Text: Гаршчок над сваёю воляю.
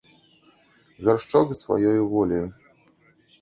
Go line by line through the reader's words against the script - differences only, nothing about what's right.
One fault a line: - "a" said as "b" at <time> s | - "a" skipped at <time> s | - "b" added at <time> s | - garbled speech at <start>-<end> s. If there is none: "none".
none